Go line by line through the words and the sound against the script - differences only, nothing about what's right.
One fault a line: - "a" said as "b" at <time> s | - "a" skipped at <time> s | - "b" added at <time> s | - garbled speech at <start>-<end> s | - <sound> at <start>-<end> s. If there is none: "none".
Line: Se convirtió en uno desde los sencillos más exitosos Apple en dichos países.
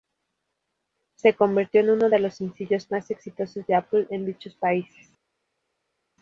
- "desde" said as "de" at 2.1 s
- "de" added at 3.7 s